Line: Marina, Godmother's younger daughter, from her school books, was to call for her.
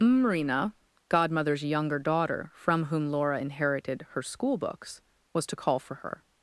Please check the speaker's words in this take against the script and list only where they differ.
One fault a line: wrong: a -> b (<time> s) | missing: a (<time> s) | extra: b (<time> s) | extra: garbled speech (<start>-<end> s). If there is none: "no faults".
extra: whom Laura inherited (2.9 s)